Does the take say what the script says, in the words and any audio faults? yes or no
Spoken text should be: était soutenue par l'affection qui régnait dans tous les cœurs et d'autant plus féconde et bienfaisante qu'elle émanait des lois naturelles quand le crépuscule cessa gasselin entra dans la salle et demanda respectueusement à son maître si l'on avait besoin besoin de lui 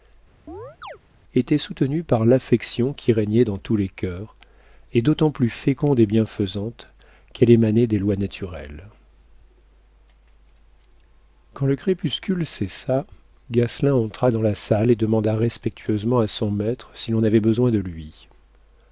no